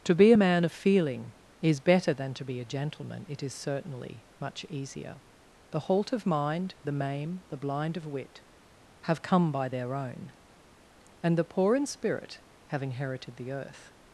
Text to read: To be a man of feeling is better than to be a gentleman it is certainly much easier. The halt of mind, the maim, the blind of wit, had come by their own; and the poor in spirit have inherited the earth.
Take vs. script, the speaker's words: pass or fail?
fail